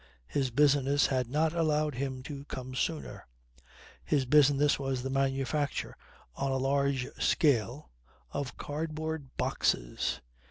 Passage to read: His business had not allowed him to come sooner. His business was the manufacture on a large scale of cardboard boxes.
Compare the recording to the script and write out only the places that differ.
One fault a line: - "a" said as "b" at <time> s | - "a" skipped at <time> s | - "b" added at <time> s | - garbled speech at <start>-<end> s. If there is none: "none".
none